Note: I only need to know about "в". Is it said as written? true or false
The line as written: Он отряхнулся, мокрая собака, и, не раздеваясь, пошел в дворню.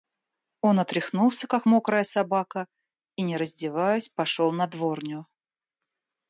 false